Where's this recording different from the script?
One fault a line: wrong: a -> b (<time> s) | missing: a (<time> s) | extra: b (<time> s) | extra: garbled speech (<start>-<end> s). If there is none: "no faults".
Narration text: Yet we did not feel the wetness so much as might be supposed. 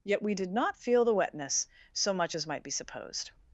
no faults